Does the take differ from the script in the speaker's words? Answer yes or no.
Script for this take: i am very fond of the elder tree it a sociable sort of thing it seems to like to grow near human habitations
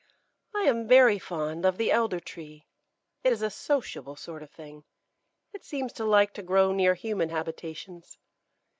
yes